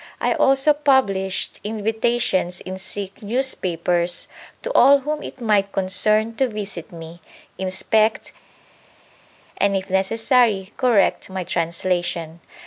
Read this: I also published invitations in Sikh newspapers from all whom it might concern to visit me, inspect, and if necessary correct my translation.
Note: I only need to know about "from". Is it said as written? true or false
false